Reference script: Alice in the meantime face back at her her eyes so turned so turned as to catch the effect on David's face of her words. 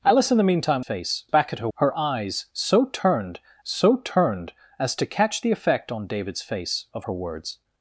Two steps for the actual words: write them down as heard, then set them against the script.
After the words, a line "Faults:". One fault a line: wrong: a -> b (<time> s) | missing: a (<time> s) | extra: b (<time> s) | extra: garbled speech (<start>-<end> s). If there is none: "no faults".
Alice in the meantime face back at her her eyes so turned so turned as to catch the effect on David's face of her words.
Faults:
no faults